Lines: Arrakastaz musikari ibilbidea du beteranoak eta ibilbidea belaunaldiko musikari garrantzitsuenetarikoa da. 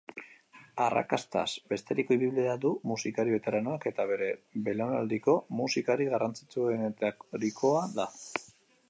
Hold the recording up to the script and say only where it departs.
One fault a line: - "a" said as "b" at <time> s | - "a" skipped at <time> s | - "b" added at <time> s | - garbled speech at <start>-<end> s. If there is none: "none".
- "musikari" said as "beteriko" at 1.7 s
- "musikari" added at 2.9 s
- "ibilbidea" said as "bere" at 4.1 s